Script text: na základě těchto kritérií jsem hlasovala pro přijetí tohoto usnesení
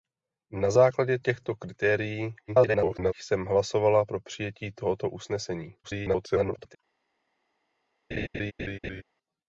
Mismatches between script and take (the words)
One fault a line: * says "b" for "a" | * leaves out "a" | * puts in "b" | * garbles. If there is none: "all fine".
* garbles
* garbles